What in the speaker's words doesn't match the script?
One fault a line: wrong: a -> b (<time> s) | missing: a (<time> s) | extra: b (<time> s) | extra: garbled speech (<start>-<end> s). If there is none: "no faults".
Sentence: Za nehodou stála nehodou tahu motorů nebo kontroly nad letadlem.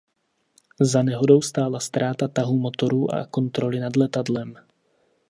wrong: nehodou -> ztráta (1.8 s)
wrong: nebo -> a (3.1 s)